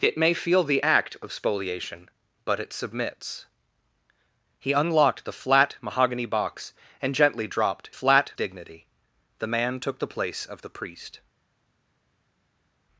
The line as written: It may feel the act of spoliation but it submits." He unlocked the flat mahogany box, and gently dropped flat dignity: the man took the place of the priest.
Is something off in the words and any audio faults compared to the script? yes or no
no